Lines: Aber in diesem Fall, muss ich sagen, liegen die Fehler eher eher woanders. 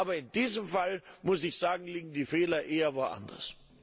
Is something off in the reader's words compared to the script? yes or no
yes